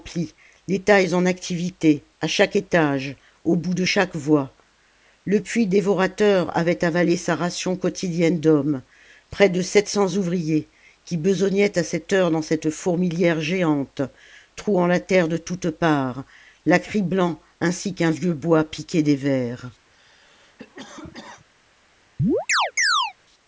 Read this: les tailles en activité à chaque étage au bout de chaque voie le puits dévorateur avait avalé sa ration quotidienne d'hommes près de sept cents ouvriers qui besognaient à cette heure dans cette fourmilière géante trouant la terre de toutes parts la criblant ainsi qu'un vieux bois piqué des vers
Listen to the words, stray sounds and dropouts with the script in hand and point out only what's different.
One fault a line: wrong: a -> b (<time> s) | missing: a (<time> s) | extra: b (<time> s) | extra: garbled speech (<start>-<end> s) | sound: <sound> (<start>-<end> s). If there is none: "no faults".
sound: cough (19.9-21.5 s)
sound: chirp (22.2-23.1 s)